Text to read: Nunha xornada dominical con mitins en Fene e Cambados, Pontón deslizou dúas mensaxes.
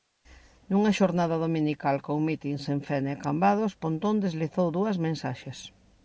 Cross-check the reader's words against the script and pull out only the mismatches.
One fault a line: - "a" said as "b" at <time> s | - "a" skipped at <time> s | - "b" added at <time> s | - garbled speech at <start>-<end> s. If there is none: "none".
none